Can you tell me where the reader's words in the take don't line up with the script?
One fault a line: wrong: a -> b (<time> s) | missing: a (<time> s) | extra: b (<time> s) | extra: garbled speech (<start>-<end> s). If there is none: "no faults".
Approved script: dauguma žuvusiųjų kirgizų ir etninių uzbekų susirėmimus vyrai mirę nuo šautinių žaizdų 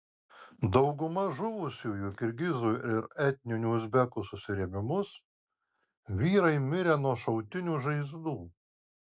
no faults